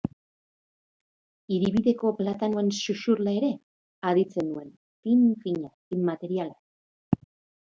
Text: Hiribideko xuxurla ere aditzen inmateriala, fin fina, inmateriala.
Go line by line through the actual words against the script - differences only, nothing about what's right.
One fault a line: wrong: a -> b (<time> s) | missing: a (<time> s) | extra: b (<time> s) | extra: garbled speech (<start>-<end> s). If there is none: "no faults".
extra: platanoen (2.2 s)
wrong: inmateriala -> nuen (4.5 s)